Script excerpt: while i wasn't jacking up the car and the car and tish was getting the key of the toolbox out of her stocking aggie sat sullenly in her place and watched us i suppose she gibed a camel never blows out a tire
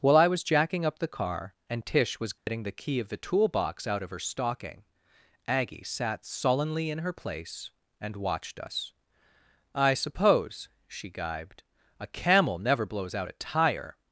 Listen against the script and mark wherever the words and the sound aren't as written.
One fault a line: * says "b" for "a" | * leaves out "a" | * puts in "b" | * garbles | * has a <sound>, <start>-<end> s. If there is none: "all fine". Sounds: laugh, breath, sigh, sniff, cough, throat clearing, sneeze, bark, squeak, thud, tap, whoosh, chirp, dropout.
* says "was" for "wasn't"
* leaves out "the car and"
* has a dropout, 2.4-2.5 s